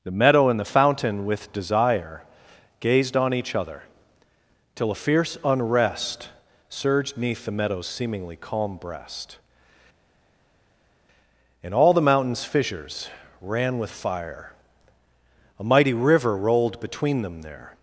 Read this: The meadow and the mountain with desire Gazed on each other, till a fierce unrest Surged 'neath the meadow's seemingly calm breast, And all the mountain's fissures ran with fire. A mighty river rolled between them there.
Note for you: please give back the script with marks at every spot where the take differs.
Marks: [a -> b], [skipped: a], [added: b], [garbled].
The meadow and the [mountain -> fountain] with desire Gazed on each other, till a fierce unrest Surged 'neath the meadow's seemingly calm breast, And all the mountain's fissures ran with fire. A mighty river rolled between them there.